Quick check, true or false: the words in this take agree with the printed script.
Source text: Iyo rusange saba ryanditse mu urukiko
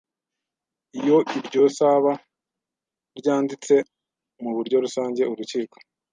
false